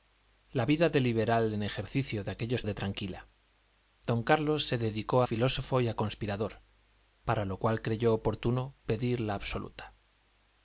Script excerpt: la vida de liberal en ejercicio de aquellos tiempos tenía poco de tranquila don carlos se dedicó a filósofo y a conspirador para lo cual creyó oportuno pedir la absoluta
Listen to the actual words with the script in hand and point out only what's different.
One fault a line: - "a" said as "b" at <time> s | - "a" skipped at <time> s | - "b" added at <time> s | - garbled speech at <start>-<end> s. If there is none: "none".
- "tiempos tenía poco" skipped at 2.6 s
- "a" skipped at 5.2 s